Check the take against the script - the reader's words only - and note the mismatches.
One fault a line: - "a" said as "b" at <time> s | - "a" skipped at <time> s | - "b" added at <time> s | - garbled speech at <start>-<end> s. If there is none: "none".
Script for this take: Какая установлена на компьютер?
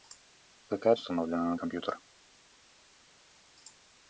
none